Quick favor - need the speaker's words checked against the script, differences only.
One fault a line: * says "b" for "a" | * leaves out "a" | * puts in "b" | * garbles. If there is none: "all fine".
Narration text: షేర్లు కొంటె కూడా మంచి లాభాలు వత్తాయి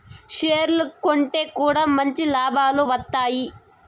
all fine